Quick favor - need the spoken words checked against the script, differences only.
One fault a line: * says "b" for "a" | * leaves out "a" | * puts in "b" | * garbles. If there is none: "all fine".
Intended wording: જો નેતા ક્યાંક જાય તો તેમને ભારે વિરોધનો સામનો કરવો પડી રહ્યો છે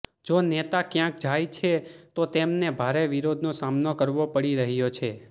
* puts in "છે"